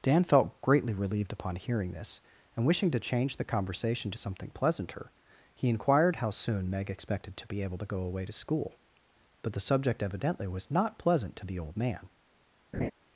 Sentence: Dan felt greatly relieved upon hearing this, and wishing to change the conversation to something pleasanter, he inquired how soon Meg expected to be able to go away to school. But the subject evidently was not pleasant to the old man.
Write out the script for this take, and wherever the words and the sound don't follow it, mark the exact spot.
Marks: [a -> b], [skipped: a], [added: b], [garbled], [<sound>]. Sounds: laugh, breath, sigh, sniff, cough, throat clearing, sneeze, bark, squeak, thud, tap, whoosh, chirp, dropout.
Dan felt greatly relieved upon hearing this, and wishing to change the conversation to something pleasanter, he inquired how soon Meg expected to be able to go away to school. But the subject evidently was not pleasant to the old man. [laugh]